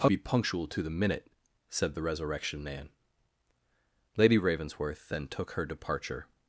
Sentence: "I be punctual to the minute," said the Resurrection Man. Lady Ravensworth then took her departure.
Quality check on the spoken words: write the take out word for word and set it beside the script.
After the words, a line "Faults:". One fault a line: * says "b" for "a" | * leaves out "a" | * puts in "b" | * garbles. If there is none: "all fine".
"I be punctual to the minute," said the Resurrection Man. Lady Ravensworth then took her departure.
Faults:
all fine